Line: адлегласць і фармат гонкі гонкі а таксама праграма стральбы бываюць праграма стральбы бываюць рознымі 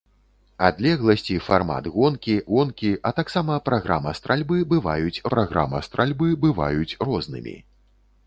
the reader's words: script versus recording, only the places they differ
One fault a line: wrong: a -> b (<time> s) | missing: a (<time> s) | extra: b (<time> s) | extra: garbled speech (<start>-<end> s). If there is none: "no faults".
no faults